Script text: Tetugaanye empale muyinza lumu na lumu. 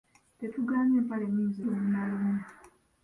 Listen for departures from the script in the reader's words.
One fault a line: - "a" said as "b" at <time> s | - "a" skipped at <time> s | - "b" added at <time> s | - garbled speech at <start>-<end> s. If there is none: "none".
none